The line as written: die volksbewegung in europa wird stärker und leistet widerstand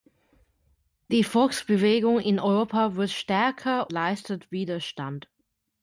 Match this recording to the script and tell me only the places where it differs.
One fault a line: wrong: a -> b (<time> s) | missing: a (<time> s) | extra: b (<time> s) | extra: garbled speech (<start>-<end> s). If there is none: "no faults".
missing: und (3.9 s)